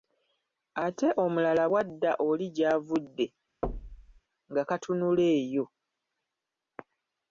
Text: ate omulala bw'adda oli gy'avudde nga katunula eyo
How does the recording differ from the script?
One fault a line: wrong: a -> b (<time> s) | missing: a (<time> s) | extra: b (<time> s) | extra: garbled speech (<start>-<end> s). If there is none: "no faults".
no faults